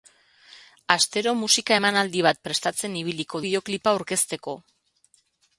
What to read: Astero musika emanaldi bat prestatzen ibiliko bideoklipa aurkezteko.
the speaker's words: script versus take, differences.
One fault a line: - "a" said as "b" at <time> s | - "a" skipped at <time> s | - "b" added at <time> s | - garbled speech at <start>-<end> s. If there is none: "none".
none